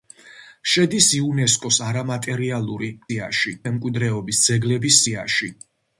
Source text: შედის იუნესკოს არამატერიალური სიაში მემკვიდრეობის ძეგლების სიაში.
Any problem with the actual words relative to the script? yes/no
no